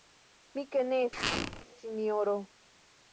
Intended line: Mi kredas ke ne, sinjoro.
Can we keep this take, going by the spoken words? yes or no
no